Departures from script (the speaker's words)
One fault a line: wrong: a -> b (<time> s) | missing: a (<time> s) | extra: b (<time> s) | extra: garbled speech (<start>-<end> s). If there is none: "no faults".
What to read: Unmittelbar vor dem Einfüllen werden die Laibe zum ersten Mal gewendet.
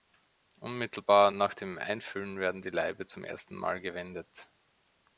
wrong: vor -> nach (1.3 s)